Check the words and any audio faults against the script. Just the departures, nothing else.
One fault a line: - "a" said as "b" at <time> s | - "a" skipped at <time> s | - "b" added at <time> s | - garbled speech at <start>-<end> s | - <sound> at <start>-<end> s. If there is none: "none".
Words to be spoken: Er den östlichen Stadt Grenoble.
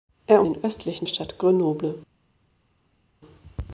none